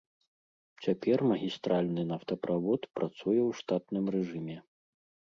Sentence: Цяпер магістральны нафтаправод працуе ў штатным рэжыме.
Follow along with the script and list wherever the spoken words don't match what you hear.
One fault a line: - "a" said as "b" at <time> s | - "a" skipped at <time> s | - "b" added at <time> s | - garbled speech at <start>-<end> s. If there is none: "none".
none